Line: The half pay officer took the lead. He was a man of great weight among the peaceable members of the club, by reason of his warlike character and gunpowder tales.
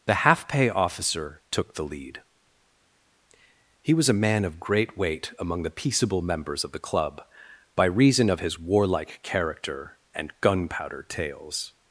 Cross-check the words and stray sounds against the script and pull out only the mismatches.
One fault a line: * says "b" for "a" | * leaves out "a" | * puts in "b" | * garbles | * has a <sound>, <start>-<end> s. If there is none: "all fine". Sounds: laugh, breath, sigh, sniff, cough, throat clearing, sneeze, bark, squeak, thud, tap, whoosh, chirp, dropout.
all fine